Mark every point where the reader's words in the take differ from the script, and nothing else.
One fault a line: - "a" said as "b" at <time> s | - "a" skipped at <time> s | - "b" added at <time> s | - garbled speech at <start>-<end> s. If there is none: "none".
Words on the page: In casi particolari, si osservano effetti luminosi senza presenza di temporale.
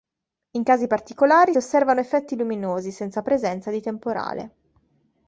- "si" skipped at 1.5 s